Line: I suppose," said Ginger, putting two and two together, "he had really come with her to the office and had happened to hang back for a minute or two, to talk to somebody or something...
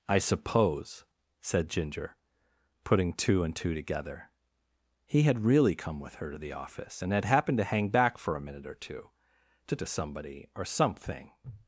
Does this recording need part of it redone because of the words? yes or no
yes